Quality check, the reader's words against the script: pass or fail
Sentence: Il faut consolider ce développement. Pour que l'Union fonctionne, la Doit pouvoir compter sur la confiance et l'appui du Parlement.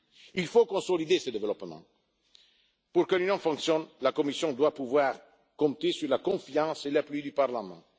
fail